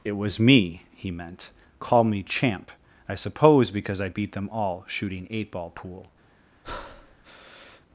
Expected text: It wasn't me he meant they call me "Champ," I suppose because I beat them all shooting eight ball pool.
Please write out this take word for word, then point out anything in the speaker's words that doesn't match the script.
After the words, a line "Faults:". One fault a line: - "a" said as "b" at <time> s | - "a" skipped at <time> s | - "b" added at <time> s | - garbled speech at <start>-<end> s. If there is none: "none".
It was me he meant call me "Champ," I suppose because I beat them all shooting eight ball pool.
Faults:
- "wasn't" said as "was" at 0.1 s
- "they" skipped at 1.5 s